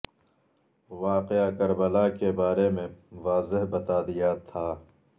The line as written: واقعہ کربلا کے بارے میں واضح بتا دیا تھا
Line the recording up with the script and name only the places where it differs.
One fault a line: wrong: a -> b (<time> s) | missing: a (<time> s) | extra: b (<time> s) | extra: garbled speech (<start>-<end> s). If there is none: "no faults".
no faults